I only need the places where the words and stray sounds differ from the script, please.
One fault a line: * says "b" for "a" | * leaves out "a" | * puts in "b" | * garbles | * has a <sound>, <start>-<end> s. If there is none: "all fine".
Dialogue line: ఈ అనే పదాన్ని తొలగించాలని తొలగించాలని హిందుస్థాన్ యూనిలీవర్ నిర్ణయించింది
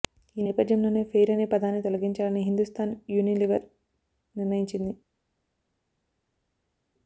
* puts in "నేపథ్యంలోనే ఫెయిర్"
* leaves out "తొలగించాలని"